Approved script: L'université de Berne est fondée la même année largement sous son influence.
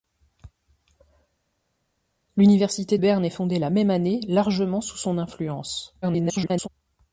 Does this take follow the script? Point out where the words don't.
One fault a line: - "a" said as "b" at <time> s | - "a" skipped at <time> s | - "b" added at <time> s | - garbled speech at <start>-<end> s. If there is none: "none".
- "de" skipped at 3.0 s
- garbled speech at 6.0-6.7 s